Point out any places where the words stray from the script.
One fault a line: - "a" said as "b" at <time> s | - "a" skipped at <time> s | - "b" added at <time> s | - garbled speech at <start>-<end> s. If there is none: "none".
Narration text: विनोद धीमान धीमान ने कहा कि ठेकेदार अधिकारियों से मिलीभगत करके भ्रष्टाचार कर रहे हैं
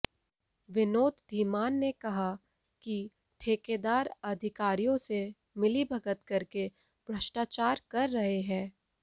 - "धीमान" skipped at 1.7 s